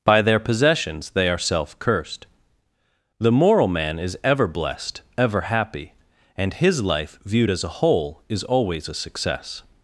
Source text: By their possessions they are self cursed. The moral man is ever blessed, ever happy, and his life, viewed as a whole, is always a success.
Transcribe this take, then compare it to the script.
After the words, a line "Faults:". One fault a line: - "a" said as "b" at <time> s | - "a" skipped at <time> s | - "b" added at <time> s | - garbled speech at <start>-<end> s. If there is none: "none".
By their possessions they are self cursed. The moral man is ever blessed, ever happy, and his life, viewed as a whole, is always a success.
Faults:
none